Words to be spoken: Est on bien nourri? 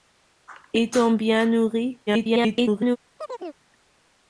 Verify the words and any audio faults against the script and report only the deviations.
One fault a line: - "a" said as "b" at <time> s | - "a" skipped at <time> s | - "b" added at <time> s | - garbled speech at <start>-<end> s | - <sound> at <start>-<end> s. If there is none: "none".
- garbled speech at 2.1-3.0 s
- chirp at 3.2-3.6 s